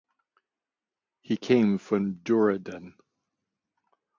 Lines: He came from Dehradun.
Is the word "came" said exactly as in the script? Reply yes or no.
yes